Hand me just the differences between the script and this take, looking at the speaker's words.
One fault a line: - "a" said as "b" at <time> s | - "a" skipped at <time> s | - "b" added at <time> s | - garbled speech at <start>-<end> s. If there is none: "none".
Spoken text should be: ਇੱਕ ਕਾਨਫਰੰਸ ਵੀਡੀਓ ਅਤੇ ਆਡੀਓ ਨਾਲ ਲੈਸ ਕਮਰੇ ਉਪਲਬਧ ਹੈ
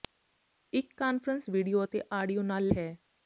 - "ਲੈਸ ਕਮਰੇ ਉਪਲਬਧ" skipped at 2.7 s